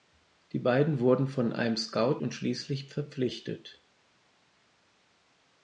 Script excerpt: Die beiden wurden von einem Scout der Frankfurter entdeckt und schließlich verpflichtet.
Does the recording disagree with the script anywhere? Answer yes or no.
yes